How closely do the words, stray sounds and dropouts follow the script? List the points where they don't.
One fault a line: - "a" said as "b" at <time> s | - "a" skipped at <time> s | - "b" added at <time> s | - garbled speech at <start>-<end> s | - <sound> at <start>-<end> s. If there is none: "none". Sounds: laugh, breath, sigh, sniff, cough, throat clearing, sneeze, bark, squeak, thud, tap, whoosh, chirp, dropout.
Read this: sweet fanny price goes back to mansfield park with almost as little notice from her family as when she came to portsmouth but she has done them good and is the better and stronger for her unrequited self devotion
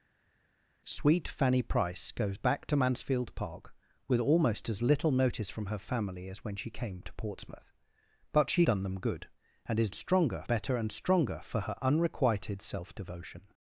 - "has" skipped at 8.7 s
- "the" said as "stronger" at 9.9 s